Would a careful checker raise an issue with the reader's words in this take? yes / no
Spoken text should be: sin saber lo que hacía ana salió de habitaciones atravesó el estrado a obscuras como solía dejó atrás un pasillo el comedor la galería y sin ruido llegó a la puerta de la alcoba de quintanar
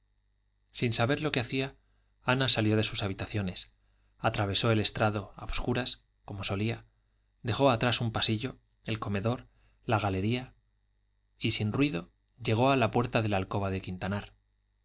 yes